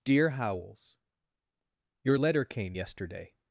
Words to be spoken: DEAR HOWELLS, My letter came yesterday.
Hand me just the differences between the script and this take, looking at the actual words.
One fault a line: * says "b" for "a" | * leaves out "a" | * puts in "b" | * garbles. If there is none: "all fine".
* says "Your" for "My"